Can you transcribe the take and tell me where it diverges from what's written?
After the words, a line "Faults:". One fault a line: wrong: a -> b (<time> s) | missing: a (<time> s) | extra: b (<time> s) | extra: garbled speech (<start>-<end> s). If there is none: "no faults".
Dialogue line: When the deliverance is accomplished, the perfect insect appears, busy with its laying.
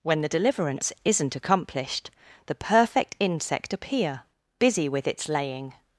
When the deliverance isn't accomplished, the perfect insect appear, busy with its laying.
Faults:
wrong: is -> isn't (1.0 s)
wrong: appears -> appear (3.7 s)